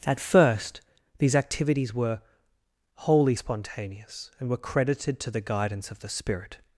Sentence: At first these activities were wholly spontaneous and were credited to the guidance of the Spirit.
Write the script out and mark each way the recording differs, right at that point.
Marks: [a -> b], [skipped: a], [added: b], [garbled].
At first these activities were wholly spontaneous and were credited to the guidance of the Spirit.